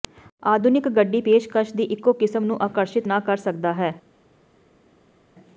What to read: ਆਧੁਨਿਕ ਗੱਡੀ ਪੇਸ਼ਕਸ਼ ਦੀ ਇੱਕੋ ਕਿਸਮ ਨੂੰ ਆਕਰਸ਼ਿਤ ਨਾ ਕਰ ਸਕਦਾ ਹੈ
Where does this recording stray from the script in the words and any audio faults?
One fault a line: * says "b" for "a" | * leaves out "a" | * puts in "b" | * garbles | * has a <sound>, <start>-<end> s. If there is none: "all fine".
all fine